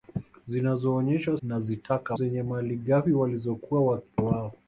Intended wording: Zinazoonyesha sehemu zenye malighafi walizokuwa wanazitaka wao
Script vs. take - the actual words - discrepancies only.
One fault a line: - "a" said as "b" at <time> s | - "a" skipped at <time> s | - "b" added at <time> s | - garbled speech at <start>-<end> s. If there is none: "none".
- "sehemu" said as "wanazitaka" at 1.4 s
- "wanazitaka" skipped at 4.0 s